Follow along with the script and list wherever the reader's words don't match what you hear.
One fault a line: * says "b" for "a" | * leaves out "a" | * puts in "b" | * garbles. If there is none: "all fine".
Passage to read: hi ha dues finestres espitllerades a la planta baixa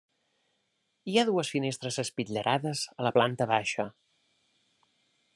all fine